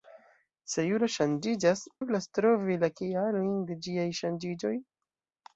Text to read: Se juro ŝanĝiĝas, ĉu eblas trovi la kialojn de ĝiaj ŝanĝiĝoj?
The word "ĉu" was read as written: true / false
false